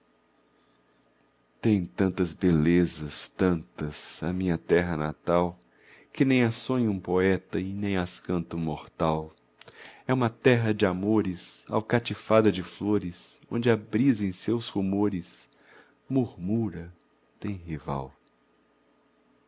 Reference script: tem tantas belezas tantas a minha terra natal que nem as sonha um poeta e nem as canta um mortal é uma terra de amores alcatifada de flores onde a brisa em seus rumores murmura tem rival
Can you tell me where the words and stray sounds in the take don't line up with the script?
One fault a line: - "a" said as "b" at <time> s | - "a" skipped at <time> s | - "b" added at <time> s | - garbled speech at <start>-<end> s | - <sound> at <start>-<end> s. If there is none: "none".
none